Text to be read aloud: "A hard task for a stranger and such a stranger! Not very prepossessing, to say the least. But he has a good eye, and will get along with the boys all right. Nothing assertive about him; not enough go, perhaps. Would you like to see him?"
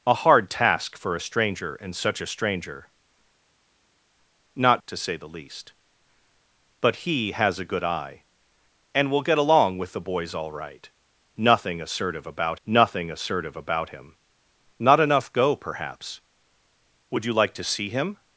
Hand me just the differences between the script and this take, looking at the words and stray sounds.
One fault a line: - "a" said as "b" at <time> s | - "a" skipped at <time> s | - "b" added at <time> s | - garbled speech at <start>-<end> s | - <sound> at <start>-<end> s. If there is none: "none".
- "very prepossessing" skipped at 4.8 s
- "nothing assertive about" added at 12.6 s